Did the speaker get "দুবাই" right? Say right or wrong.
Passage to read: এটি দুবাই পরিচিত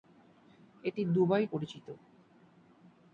right